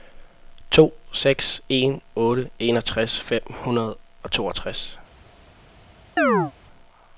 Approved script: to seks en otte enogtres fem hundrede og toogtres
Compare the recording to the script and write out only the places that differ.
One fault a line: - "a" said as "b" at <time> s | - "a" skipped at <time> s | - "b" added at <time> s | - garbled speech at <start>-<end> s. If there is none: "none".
none